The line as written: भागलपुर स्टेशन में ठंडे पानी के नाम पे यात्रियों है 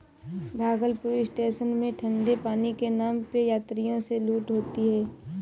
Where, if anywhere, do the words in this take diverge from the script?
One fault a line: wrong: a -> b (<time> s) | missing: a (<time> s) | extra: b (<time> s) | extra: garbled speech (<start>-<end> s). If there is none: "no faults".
extra: से लूट होती (4.0 s)